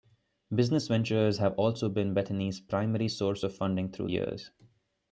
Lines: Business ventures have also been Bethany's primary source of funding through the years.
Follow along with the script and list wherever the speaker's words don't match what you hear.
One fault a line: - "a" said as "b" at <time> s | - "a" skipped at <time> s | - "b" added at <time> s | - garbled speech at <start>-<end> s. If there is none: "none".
- "the" skipped at 4.1 s